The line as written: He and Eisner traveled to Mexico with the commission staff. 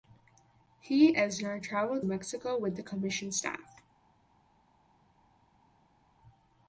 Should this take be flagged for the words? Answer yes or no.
yes